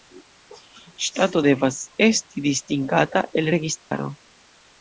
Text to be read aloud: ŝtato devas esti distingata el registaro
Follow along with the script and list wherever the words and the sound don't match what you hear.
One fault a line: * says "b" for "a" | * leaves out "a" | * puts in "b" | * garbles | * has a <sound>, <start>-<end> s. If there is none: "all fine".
* has a dropout, 3.8-3.9 s